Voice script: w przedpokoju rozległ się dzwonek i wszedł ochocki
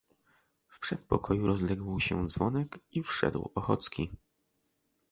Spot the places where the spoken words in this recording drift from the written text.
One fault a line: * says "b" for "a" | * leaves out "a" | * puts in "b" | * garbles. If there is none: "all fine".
all fine